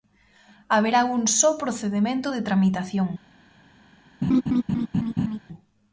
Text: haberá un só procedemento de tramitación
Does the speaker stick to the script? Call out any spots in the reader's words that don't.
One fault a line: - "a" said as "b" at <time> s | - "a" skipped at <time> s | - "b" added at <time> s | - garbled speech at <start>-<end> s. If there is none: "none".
none